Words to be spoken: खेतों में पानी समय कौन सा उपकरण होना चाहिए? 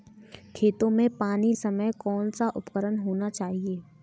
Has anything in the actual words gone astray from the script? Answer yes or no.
no